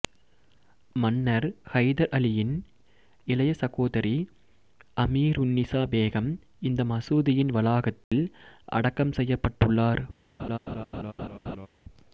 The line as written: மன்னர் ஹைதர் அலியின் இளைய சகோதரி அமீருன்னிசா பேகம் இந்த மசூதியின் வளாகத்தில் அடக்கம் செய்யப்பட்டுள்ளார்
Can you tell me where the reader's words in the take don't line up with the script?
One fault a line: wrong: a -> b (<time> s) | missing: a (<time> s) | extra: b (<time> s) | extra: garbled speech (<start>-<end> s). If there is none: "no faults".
no faults